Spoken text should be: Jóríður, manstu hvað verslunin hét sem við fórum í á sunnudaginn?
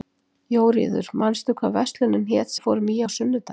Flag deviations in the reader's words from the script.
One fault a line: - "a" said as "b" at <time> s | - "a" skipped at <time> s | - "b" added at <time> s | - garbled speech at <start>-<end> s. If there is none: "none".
- "sem" skipped at 2.5 s